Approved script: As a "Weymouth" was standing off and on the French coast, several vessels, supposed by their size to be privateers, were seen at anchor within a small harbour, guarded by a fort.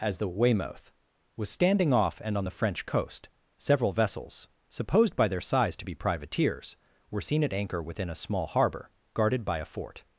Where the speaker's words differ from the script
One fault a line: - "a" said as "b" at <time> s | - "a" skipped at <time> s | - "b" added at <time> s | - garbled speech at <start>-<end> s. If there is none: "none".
- "a" said as "the" at 0.2 s